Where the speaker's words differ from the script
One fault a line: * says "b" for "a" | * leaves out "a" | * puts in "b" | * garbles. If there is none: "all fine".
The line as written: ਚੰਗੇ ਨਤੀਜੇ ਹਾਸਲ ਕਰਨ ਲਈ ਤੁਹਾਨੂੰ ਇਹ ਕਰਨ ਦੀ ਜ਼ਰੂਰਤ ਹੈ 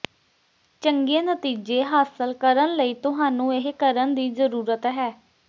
all fine